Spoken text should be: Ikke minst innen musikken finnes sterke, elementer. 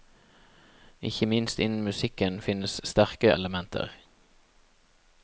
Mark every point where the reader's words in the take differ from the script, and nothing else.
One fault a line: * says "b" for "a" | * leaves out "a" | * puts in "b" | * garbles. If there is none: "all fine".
all fine